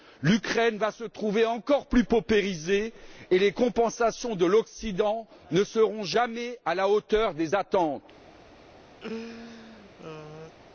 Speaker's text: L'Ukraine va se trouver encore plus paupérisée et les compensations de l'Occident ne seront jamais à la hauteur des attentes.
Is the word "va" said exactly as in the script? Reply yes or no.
yes